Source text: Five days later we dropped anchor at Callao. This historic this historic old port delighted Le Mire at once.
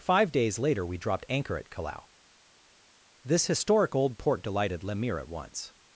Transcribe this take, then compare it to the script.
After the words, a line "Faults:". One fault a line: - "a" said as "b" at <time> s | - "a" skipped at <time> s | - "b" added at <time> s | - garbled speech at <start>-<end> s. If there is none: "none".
Five days later we dropped anchor at Callao. This historic old port delighted Le Mire at once.
Faults:
- "this historic" skipped at 3.9 s